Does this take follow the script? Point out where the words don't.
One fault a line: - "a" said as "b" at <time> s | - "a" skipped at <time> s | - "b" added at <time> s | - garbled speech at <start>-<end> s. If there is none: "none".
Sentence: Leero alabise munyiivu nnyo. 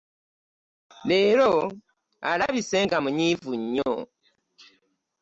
- "nga" added at 2.9 s